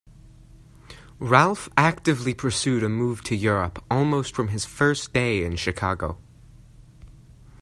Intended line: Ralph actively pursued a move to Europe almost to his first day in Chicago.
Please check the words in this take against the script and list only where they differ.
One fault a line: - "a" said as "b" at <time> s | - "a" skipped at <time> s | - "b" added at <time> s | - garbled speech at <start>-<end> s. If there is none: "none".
- "to" said as "from" at 4.3 s